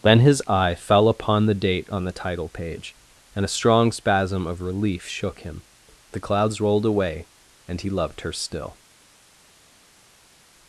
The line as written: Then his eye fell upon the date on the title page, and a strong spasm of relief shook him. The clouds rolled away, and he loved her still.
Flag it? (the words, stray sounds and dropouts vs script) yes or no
no